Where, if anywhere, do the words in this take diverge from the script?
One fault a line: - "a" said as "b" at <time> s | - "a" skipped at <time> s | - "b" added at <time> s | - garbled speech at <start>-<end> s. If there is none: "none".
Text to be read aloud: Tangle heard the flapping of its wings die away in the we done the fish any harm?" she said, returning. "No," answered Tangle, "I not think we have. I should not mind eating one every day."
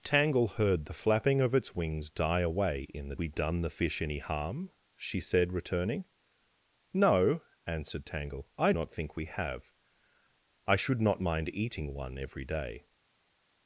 none